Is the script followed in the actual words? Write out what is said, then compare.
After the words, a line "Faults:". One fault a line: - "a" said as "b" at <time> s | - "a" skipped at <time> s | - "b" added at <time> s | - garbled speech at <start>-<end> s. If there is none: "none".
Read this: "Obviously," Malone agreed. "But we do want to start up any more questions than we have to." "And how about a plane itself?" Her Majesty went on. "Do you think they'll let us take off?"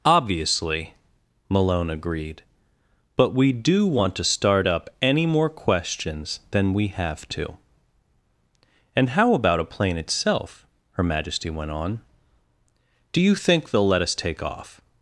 "Obviously," Malone agreed. "But we do want to start up any more questions than we have to." "And how about a plane itself?" Her Majesty went on. "Do you think they'll let us take off?"
Faults:
none